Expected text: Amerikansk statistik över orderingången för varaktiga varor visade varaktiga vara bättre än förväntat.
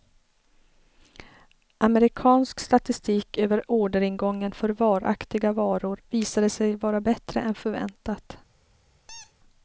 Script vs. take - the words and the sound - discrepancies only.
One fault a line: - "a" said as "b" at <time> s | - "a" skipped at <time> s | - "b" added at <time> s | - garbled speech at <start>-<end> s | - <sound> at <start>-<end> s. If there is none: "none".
- "varaktiga" said as "sig" at 6.5 s
- squeak at 9.1-9.3 s